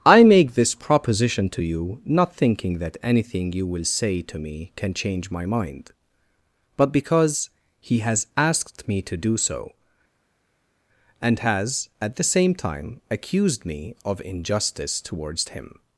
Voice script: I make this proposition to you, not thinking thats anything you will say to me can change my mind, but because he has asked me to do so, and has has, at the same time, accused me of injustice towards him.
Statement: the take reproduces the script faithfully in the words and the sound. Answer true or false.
false